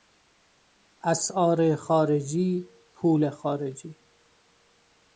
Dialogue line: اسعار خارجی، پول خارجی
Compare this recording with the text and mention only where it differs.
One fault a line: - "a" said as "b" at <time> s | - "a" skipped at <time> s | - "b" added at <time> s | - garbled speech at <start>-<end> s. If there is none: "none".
none